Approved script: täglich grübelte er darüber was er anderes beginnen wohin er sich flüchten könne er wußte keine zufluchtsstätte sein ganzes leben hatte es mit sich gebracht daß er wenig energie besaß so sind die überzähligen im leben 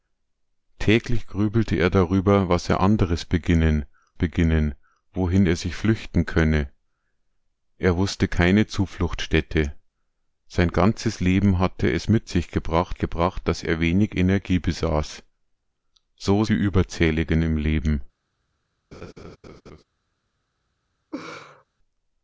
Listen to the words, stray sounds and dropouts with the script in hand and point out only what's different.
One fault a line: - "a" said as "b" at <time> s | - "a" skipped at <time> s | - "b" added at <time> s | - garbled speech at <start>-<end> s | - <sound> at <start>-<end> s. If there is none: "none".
- "beginnen" added at 4.1 s
- "gebracht" added at 13.0 s
- "sind" skipped at 16.4 s
- laugh at 18.9-19.8 s
- laugh at 21.1-21.6 s